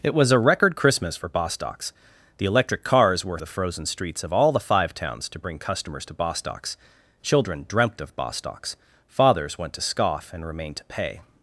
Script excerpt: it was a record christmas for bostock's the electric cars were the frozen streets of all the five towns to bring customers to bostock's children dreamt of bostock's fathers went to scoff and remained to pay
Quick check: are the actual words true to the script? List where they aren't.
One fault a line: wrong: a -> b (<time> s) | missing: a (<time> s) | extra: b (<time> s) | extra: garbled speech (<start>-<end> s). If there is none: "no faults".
no faults